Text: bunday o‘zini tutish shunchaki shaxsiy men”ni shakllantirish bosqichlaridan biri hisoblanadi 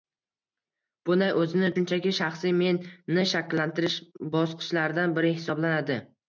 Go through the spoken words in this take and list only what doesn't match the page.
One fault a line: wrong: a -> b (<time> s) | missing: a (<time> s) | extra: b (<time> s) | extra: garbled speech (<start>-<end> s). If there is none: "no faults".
missing: tutish (1.7 s)